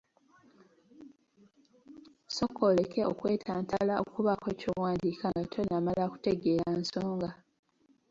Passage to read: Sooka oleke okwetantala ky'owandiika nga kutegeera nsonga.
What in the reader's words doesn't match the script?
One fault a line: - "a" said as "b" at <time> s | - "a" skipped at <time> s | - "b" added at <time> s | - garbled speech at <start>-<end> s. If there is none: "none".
- "okubaako" added at 4.0 s
- "tonnamala" added at 5.5 s